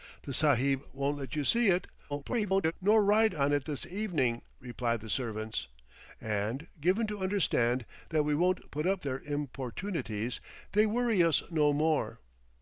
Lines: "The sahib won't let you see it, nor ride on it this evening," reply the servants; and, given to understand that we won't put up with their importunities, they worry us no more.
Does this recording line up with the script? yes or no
no